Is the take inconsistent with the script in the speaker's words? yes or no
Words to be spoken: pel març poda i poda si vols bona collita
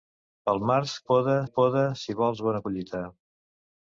no